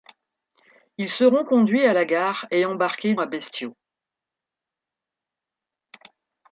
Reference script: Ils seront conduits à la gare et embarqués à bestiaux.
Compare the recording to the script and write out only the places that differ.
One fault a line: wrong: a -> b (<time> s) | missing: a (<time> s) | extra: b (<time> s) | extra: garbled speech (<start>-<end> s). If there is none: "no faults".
no faults